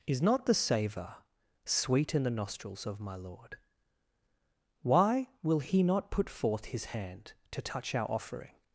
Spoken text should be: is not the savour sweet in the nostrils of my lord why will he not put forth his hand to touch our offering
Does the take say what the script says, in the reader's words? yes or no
yes